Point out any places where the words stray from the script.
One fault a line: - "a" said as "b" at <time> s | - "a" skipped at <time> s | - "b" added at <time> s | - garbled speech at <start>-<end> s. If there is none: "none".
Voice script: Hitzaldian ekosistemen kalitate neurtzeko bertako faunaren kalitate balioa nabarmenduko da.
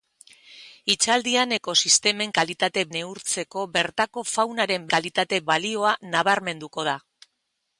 none